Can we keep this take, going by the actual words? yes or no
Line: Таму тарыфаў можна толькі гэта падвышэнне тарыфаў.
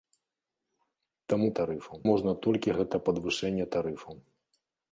yes